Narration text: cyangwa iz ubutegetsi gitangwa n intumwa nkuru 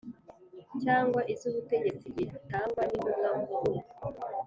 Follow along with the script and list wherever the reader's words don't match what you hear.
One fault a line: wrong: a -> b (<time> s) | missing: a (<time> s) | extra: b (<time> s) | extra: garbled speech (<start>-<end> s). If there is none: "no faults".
no faults